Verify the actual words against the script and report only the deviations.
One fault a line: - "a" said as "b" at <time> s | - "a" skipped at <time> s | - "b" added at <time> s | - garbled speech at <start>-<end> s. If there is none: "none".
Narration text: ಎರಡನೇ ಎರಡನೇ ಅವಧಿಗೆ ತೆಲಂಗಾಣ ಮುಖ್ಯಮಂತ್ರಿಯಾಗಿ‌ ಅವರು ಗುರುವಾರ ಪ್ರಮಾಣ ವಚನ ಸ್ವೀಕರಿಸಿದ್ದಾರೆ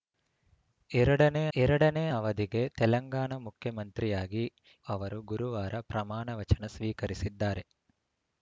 none